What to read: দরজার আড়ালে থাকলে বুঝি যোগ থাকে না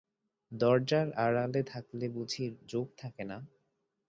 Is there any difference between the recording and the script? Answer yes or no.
no